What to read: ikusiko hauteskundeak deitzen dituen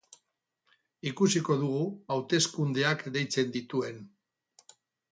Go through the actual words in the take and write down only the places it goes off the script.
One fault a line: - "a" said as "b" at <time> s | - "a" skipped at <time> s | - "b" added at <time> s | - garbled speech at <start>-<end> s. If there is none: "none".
- "dugu" added at 1.6 s